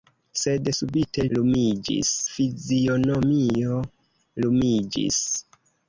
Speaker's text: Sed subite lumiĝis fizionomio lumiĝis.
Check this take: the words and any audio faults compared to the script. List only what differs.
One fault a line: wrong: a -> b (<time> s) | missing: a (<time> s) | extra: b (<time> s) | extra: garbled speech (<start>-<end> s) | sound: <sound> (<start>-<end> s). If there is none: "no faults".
no faults